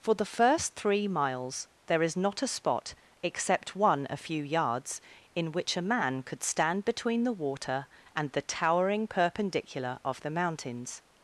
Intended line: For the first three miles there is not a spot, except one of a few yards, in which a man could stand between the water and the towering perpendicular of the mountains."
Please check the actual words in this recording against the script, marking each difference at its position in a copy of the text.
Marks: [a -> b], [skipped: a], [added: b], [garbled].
For the first three miles there is not a spot, except one [skipped: of] a few yards, in which a man could stand between the water and the towering perpendicular of the mountains."